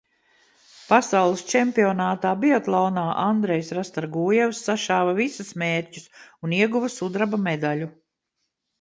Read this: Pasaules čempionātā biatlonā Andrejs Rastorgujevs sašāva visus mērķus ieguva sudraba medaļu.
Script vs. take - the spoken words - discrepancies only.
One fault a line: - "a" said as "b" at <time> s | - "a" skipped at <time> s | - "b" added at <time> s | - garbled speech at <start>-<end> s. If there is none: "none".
- "un" added at 6.5 s